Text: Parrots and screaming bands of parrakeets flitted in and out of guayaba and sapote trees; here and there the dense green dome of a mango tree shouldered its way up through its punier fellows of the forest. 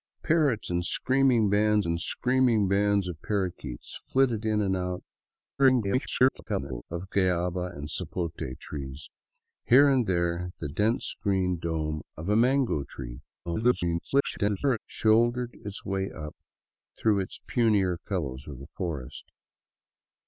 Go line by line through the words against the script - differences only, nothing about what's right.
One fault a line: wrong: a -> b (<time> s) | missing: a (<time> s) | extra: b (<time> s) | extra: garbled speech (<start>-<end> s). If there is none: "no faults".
extra: and screaming bands (1.9 s)
extra: garbled speech (5.6-6.8 s)
extra: garbled speech (13.5-14.8 s)